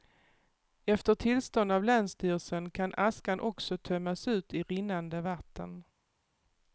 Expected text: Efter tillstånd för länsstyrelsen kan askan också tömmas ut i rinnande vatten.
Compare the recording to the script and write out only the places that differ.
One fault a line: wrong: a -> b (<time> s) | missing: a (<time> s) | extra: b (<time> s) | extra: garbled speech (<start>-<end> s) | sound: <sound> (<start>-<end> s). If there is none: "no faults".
wrong: för -> av (1.7 s)